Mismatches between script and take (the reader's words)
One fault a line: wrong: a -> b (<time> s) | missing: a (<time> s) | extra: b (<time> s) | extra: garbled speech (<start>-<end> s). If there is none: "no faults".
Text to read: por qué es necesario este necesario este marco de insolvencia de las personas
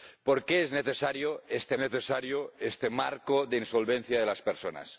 no faults